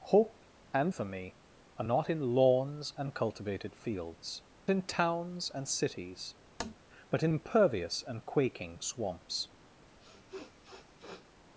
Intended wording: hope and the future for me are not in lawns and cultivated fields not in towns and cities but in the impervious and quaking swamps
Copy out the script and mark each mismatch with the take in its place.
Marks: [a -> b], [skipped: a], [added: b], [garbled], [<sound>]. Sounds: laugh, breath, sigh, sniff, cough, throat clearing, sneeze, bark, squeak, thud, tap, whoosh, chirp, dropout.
hope and [skipped: the future] for me are not in lawns and cultivated fields [skipped: not] in towns and cities [tap] but in [skipped: the] impervious and quaking swamps [sniff]